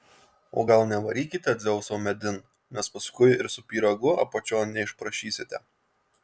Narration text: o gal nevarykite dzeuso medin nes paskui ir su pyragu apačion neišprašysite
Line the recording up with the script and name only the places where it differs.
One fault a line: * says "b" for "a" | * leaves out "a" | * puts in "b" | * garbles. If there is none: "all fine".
all fine